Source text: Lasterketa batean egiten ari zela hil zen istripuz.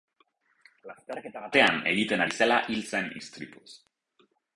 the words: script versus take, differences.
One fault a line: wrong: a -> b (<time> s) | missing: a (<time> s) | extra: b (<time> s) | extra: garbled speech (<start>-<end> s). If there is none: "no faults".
no faults